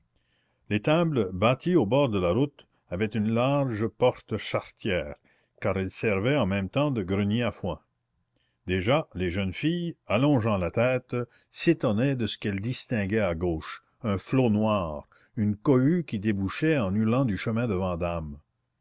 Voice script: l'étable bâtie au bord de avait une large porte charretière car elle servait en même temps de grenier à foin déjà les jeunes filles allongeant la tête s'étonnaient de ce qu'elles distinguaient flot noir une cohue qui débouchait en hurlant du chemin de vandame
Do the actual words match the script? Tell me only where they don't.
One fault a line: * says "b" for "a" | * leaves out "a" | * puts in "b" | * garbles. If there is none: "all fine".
* puts in "la route"
* puts in "à gauche un"